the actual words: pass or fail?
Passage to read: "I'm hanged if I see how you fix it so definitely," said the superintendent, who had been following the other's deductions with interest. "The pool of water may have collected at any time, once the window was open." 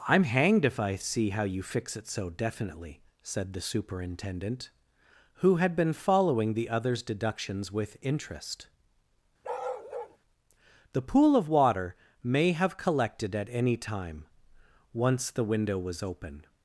pass